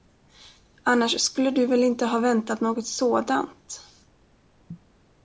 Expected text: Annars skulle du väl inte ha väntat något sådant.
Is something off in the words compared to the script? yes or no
no